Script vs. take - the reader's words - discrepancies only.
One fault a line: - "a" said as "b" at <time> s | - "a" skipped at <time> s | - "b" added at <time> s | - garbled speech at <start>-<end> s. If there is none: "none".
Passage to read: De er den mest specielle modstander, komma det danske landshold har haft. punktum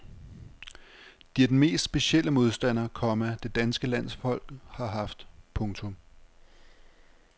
none